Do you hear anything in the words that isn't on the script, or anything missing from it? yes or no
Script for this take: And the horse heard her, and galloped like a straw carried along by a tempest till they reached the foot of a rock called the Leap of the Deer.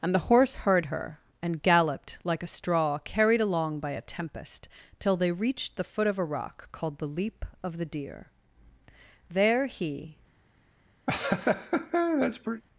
yes